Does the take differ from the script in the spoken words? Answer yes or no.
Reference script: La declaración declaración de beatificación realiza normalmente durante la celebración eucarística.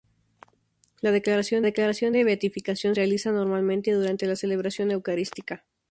no